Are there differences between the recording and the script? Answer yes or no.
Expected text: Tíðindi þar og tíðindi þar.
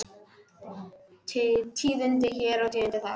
yes